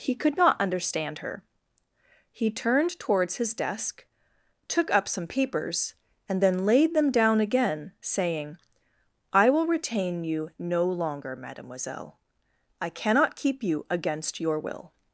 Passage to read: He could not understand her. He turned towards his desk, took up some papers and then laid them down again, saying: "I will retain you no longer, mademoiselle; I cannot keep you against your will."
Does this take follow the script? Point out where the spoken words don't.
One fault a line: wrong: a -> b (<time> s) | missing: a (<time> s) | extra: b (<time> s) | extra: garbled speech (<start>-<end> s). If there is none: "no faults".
no faults